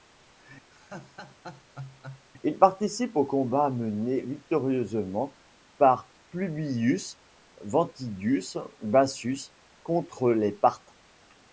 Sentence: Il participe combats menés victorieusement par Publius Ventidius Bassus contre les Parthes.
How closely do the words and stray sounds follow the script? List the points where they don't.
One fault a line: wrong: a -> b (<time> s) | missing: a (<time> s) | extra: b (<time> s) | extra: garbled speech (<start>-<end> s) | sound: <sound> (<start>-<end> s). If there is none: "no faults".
sound: laugh (0.7-2.3 s)
extra: aux (3.2 s)